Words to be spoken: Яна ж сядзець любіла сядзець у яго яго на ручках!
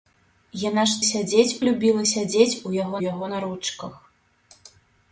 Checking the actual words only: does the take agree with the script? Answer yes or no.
yes